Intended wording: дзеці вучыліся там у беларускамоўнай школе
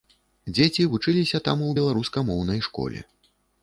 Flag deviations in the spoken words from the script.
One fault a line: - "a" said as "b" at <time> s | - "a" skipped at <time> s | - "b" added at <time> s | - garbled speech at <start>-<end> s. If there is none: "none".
none